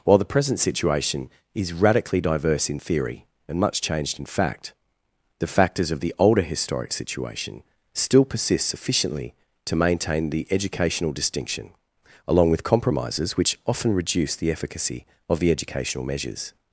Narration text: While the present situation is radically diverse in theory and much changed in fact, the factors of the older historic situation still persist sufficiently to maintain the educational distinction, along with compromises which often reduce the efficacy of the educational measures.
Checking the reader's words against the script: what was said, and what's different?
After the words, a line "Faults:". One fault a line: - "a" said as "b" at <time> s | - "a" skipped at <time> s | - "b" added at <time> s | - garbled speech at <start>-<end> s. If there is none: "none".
While the present situation is radically diverse in theory and much changed in fact, the factors of the older historic situation still persist sufficiently to maintain the educational distinction, along with compromises which often reduce the efficacy of the educational measures.
Faults:
none